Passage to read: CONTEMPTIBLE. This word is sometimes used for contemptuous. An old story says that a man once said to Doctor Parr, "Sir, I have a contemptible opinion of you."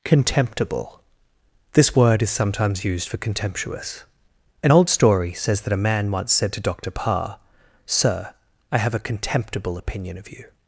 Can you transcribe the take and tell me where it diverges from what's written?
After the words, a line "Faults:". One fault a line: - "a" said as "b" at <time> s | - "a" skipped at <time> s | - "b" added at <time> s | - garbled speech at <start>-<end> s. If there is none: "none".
CONTEMPTIBLE. This word is sometimes used for contemptuous. An old story says that a man once said to Doctor Parr, "Sir, I have a contemptible opinion of you."
Faults:
none